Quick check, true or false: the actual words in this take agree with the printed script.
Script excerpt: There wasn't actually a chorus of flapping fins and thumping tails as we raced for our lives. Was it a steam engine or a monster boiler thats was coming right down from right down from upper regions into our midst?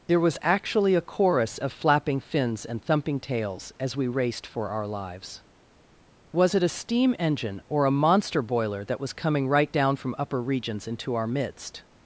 false